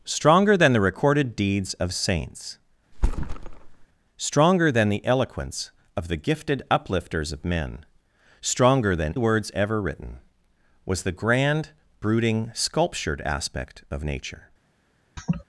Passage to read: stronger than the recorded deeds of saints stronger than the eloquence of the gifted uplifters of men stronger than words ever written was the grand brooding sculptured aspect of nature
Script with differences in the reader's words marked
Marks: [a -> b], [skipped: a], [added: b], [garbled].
stronger than the recorded deeds of saints stronger than the eloquence of the gifted uplifters of men stronger than words ever written was the grand brooding sculptured aspect of nature